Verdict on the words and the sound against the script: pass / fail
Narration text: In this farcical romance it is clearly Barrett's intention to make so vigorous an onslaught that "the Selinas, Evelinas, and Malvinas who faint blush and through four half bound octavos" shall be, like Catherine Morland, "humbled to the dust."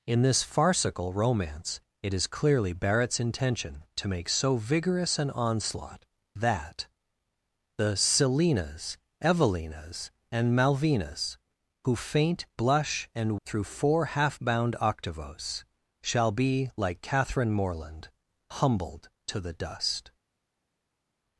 pass